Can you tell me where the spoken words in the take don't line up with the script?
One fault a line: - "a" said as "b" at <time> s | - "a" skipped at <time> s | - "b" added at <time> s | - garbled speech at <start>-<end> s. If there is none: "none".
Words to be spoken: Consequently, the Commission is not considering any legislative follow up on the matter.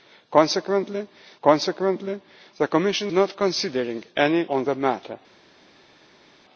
- "consequently" added at 1.4 s
- "is" skipped at 3.1 s
- "legislative follow up" skipped at 4.5 s